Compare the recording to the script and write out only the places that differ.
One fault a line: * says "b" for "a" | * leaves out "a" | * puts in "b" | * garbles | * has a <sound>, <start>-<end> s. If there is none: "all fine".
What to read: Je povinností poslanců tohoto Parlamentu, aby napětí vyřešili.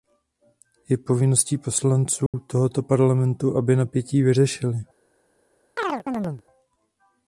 * has a dropout, 2.3-2.3 s
* has a chirp, 5.8-6.4 s